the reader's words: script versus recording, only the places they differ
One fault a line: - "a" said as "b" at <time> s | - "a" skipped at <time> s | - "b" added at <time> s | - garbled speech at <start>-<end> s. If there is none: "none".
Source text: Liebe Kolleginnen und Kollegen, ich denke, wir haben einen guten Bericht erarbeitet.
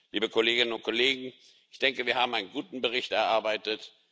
none